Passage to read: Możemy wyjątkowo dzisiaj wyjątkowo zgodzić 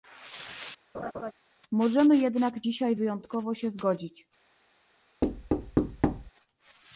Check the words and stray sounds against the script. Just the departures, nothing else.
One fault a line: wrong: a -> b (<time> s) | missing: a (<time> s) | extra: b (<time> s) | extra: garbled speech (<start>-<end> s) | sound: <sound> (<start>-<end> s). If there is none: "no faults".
sound: laugh (0.9-1.3 s)
wrong: wyjątkowo -> jednak (2.2 s)
extra: się (3.5 s)
sound: thud (5.2-6.3 s)